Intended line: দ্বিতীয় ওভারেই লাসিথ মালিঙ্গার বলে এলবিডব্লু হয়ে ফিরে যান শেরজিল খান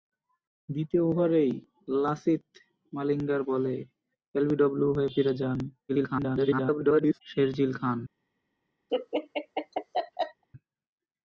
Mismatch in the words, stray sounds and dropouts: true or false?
true